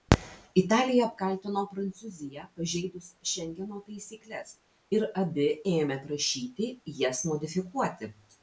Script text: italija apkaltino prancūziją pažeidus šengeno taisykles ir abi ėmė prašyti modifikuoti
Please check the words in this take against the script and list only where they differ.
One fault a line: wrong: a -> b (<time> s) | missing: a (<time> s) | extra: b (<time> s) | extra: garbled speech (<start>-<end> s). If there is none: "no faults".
extra: jas (7.1 s)